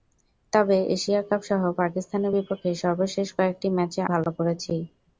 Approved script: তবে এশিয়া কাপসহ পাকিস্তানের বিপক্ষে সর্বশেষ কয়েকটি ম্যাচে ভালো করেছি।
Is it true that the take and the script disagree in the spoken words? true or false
false